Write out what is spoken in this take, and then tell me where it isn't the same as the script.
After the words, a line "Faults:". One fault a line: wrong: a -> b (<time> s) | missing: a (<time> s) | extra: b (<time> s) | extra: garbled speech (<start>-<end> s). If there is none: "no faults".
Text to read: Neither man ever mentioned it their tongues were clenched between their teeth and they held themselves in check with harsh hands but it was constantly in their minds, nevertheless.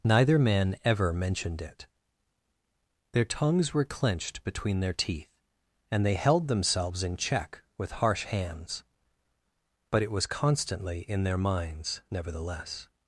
Neither man ever mentioned it their tongues were clenched between their teeth and they held themselves in check with harsh hands but it was constantly in their minds, nevertheless.
Faults:
no faults